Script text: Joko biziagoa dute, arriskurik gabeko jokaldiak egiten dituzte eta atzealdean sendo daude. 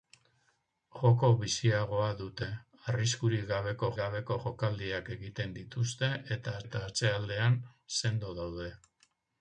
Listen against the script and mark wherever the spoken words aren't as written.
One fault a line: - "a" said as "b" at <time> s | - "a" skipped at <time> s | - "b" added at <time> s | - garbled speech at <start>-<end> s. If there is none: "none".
- "gabeko" added at 4.0 s
- "eta" added at 6.7 s